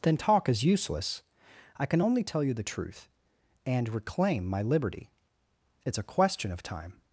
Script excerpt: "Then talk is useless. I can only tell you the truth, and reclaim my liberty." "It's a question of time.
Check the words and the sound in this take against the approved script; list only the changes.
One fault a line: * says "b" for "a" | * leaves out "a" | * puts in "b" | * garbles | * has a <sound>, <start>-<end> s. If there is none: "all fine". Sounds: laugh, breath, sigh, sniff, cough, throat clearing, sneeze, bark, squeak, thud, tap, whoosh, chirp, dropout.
all fine